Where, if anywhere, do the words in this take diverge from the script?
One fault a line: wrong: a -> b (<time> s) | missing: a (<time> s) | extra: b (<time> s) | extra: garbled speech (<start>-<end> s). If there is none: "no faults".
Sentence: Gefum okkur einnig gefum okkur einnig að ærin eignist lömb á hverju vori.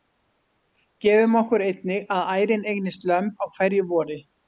missing: gefum okkur einnig (2.1 s)